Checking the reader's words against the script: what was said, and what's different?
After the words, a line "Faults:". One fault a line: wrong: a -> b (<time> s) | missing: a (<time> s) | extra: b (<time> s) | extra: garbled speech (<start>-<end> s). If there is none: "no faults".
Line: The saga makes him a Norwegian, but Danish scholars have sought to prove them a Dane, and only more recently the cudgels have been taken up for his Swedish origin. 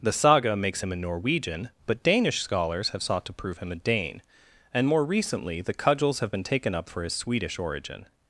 The saga makes him a Norwegian, but Danish scholars have sought to prove him a Dane, and more recently the cudgels have been taken up for his Swedish origin.
Faults:
wrong: them -> him (3.6 s)
missing: only (4.9 s)